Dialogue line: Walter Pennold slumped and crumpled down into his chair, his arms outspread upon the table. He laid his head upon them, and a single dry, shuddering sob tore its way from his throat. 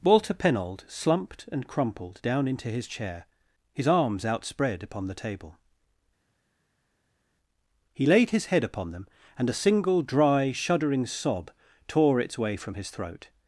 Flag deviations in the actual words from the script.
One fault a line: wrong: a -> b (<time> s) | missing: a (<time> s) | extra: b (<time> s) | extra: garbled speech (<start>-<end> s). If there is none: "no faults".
no faults